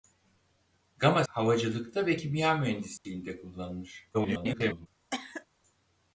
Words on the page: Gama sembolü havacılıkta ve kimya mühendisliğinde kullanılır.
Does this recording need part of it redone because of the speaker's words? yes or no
yes